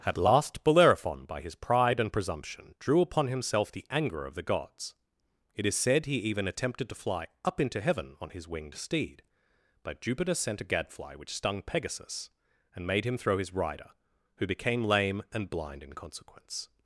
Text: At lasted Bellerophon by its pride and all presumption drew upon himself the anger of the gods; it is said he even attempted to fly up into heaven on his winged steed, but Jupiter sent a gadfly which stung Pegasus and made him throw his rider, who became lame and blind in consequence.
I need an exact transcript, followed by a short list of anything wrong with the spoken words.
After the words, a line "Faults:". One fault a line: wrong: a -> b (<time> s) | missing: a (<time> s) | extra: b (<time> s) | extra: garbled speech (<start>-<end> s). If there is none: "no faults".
At last Bellerophon by his pride and presumption drew upon himself the anger of the gods; it is said he even attempted to fly up into heaven on his winged steed, but Jupiter sent a gadfly which stung Pegasus and made him throw his rider, who became lame and blind in consequence.
Faults:
wrong: lasted -> last (0.2 s)
wrong: its -> his (1.4 s)
missing: all (2.1 s)